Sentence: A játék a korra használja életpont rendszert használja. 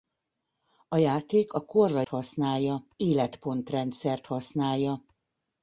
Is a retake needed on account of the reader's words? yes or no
no